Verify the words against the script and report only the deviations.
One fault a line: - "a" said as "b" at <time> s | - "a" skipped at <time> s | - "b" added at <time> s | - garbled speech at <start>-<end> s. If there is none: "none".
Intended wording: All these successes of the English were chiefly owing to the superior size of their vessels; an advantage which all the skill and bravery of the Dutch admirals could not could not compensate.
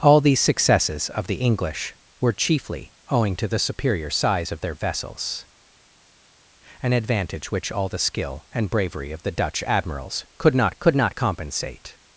none